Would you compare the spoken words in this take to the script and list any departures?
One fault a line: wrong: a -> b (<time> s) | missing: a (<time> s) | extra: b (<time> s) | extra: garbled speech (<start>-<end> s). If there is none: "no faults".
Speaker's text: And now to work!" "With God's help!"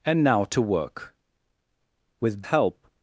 missing: God's (2.4 s)